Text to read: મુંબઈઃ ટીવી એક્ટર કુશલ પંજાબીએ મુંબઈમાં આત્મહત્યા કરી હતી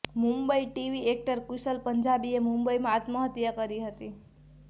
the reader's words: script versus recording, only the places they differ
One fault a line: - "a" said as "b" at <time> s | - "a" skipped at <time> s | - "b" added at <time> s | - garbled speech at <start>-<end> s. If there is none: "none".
none